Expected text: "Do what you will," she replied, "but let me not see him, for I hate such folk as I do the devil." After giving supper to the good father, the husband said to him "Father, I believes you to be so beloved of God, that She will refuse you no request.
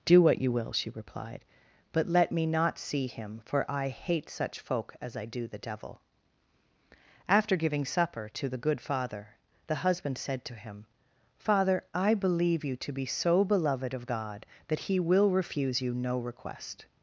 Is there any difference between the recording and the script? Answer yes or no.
yes